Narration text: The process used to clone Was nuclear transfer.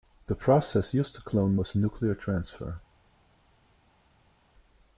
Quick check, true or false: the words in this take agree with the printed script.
true